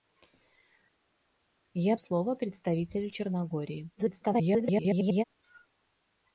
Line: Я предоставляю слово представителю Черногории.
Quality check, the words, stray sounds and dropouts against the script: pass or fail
fail